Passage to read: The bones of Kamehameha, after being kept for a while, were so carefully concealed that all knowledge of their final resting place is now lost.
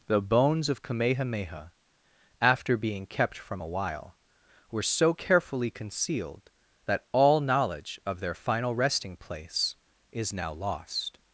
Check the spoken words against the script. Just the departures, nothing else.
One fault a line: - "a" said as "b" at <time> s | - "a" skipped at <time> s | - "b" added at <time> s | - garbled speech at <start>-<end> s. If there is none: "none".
- "for" said as "from" at 3.4 s